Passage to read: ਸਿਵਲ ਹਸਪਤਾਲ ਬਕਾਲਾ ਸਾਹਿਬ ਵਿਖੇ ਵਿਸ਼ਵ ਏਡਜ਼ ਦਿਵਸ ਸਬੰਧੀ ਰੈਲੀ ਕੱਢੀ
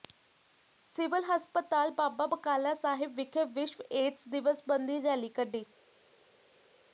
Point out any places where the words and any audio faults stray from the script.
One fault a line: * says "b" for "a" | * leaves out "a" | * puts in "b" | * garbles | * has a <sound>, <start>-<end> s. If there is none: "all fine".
* puts in "ਬਾਬਾ"